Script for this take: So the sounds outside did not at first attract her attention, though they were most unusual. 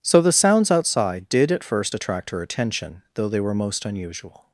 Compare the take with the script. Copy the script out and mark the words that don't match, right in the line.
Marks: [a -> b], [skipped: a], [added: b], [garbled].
So the sounds outside did [skipped: not] at first attract her attention, though they were most unusual.